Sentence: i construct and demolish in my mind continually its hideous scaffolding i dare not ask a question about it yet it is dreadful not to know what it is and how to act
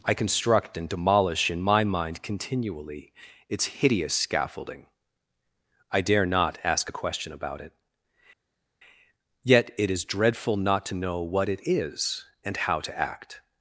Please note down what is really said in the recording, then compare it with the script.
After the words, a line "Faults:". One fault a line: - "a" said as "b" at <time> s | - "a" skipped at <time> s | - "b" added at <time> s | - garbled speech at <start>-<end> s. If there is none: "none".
i construct and demolish in my mind continually its hideous scaffolding i dare not ask a question about it yet it is dreadful not to know what it is and how to act
Faults:
none